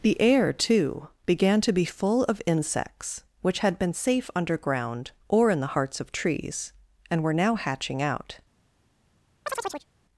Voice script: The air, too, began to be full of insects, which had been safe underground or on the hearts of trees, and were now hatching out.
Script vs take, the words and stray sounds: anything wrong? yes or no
yes